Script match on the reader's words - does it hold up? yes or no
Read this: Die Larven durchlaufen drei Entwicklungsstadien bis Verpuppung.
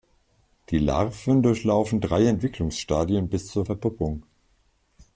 no